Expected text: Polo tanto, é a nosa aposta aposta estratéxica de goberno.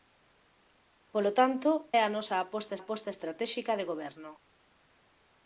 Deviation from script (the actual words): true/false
false